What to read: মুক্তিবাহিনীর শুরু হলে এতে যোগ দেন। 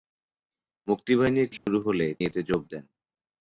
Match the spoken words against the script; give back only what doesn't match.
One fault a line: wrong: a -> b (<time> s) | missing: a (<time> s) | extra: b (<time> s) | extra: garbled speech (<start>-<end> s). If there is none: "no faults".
no faults